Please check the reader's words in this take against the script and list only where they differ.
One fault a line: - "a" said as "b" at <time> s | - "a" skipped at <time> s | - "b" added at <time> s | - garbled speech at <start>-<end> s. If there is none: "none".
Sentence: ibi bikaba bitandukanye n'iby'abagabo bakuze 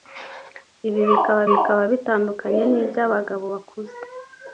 - "bikaba" added at 1.5 s